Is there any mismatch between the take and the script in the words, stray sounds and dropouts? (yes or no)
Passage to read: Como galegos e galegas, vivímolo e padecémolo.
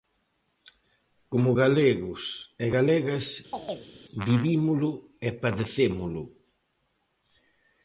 yes